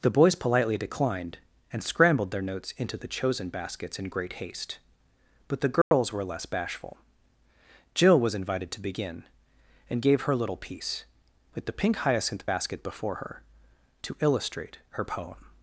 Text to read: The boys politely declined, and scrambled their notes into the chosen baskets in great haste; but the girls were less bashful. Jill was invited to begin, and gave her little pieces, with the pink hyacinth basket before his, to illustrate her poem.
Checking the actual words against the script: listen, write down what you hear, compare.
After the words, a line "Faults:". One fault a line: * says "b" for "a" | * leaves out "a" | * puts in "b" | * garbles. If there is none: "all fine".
The boys politely declined, and scrambled their notes into the chosen baskets in great haste; but the girls were less bashful. Jill was invited to begin, and gave her little piece, with the pink hyacinth basket before her, to illustrate her poem.
Faults:
* says "piece" for "pieces"
* says "her" for "his"